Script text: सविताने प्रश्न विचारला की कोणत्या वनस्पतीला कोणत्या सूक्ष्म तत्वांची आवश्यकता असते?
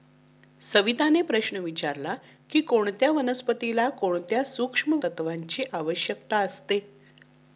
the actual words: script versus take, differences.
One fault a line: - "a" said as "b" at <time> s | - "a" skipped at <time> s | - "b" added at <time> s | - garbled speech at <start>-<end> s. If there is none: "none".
none